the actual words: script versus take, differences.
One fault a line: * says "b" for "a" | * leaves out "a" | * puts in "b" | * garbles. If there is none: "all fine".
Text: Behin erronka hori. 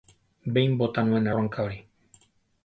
* puts in "bota nuen"